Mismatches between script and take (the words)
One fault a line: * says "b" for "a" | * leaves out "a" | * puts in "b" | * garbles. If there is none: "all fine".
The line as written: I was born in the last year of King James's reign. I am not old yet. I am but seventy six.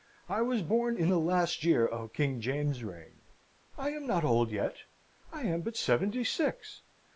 all fine